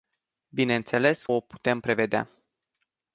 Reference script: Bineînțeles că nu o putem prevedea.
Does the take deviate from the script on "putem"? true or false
false